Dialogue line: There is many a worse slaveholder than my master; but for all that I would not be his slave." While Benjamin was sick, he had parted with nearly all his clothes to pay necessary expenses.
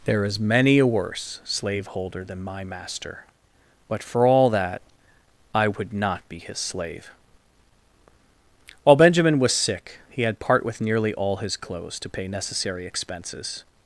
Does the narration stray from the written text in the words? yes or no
yes